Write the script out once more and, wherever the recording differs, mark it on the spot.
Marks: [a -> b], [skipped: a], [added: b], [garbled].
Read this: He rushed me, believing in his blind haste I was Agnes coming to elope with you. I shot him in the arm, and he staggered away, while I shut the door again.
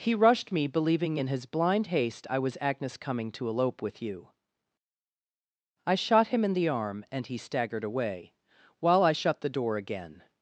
He rushed me, believing in his blind haste I was Agnes coming to elope with you. I shot him in the arm, and he staggered away, while I shut the door again.